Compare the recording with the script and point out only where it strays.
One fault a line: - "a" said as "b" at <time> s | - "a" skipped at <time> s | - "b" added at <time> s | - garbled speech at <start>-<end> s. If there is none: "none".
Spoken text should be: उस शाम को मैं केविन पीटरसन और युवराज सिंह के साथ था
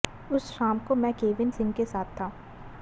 - "पीटरसन और युवराज" skipped at 1.5 s